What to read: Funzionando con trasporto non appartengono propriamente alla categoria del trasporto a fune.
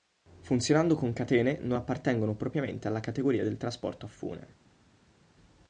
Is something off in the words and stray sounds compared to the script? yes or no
yes